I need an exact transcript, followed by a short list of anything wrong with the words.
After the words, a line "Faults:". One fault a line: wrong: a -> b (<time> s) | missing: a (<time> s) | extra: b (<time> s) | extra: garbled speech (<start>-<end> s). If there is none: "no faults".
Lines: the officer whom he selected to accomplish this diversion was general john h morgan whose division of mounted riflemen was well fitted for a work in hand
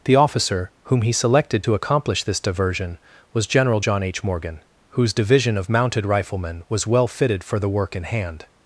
the officer whom he selected to accomplish this diversion was general john h morgan whose division of mounted riflemen was well fitted for the work in hand
Faults:
wrong: a -> the (7.6 s)